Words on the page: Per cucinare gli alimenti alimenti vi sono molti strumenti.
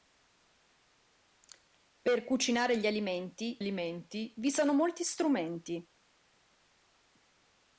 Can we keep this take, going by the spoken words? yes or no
yes